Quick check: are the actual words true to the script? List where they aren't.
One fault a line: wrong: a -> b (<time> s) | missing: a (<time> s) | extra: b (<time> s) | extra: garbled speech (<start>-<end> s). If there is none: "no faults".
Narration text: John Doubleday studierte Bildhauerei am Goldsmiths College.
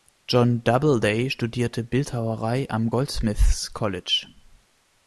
no faults